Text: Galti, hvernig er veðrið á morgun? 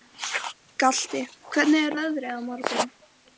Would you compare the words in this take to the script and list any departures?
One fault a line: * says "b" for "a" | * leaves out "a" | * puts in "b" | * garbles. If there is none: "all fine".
all fine